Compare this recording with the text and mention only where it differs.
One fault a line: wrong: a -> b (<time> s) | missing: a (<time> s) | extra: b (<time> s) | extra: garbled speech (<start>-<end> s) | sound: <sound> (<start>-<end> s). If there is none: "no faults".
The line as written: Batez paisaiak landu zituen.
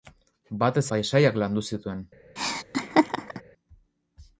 sound: laugh (2.4-3.4 s)